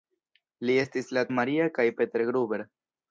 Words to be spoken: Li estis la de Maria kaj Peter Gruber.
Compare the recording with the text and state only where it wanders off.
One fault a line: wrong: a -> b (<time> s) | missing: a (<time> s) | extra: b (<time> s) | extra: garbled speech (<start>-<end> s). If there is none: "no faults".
no faults